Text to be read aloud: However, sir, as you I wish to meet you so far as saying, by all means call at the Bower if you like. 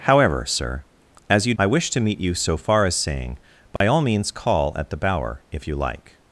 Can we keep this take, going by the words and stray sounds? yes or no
no